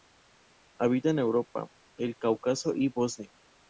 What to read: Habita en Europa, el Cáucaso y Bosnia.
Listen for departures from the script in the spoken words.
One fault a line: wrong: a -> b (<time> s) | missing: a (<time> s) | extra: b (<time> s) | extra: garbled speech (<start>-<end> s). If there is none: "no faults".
no faults